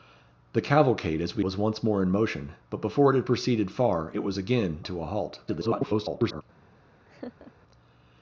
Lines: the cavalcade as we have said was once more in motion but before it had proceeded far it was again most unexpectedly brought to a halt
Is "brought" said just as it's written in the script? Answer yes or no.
no